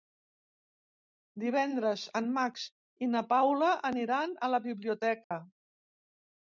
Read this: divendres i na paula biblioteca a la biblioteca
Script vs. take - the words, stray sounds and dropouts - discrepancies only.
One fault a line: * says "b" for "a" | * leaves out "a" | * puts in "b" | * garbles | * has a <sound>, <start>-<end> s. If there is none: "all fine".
* puts in "en max"
* says "aniran" for "biblioteca"
* has a dropout, 5.2-5.3 s